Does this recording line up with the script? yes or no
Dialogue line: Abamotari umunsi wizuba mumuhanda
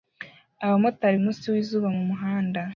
yes